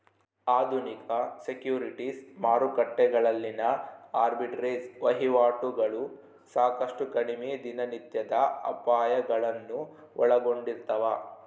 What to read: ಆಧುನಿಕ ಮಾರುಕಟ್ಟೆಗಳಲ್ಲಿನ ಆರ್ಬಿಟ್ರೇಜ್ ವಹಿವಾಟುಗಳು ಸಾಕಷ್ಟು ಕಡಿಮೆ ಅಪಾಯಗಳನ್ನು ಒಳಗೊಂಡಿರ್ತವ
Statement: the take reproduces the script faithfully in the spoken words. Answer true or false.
false